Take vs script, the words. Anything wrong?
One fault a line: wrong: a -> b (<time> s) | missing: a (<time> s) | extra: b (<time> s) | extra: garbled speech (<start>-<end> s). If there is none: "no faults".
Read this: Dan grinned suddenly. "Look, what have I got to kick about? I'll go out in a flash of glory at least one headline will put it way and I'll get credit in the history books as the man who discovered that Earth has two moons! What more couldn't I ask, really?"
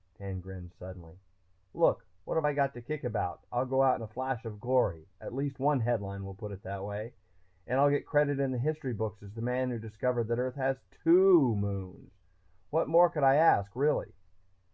extra: that (6.6 s)
wrong: couldn't -> could (13.1 s)